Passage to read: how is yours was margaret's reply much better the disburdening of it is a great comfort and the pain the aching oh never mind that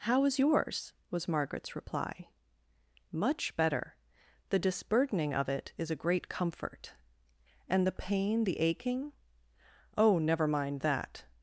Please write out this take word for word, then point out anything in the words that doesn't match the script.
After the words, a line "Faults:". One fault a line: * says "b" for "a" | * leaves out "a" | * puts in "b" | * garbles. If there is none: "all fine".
how is yours was margaret's reply much better the disburdening of it is a great comfort and the pain the aching oh never mind that
Faults:
all fine